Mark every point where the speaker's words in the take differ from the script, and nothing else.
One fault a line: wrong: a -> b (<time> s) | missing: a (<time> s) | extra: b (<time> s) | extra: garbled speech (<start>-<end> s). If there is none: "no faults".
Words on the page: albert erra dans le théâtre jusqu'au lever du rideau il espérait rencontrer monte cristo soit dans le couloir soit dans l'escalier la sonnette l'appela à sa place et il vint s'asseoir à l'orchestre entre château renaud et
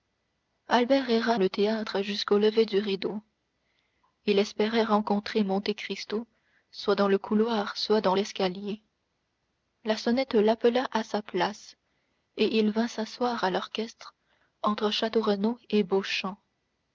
missing: dans (1.4 s)